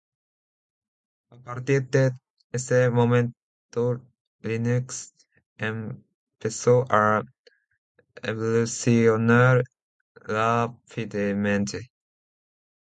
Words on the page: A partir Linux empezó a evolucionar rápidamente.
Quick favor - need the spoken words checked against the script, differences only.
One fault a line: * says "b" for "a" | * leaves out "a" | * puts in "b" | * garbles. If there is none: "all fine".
* puts in "de ese momento"